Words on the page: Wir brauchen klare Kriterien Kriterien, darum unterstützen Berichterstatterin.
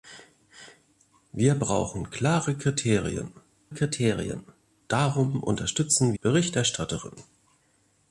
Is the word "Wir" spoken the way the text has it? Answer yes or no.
yes